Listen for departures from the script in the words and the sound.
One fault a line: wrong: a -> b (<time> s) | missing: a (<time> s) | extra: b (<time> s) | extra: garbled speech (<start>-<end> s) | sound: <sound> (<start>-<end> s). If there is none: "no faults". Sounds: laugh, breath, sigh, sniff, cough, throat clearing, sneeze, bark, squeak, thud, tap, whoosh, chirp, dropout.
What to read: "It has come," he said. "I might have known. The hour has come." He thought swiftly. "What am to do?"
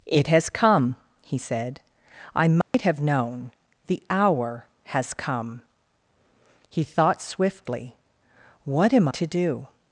sound: dropout (2.6-2.7 s)